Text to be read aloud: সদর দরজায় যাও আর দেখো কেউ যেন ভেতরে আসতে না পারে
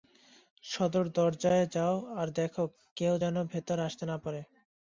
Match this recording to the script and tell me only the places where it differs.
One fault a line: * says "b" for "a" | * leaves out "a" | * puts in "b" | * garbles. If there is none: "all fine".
all fine